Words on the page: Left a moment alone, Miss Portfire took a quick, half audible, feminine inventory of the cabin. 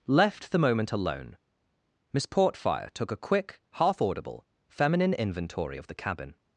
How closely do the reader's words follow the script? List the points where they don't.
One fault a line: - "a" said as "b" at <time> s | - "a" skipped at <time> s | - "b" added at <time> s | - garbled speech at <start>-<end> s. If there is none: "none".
- "a" said as "the" at 0.5 s